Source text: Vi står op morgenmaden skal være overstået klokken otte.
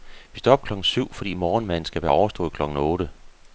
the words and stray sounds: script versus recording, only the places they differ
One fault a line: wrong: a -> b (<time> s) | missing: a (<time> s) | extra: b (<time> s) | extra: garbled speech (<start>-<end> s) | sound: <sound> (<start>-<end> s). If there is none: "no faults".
extra: klokken syv fordi (0.6 s)